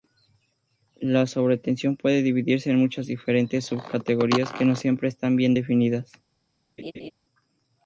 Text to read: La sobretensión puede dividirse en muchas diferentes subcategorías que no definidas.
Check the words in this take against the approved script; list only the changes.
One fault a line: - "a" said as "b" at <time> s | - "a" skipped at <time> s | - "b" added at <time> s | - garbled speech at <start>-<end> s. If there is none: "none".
- "siempre están bien" added at 4.8 s